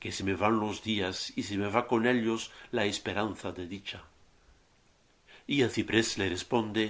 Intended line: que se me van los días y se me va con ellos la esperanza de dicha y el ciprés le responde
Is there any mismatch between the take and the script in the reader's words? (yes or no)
no